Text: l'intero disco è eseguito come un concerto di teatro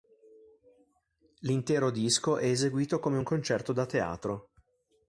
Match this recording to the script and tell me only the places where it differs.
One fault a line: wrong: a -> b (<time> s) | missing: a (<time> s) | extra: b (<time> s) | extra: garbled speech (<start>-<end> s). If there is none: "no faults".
wrong: di -> da (3.7 s)